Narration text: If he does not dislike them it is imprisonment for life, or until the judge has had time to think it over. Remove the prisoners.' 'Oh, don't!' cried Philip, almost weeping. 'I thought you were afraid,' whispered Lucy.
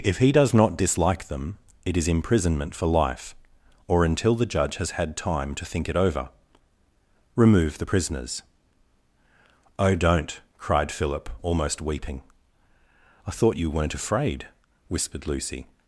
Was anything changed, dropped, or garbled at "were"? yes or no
yes